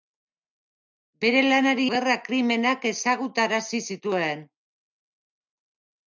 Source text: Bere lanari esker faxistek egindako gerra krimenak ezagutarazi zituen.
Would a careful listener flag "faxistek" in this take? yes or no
yes